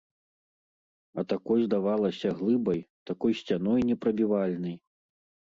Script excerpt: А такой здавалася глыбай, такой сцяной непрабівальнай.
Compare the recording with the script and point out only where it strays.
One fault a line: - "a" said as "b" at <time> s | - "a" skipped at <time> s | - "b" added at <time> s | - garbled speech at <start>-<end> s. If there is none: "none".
none